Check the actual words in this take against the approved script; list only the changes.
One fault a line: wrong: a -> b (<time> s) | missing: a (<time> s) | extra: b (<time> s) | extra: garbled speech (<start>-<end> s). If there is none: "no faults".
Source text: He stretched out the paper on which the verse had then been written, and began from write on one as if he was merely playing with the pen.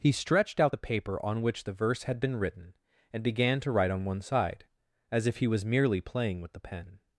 missing: then (2.2 s)
wrong: from -> to (3.6 s)
extra: side (4.2 s)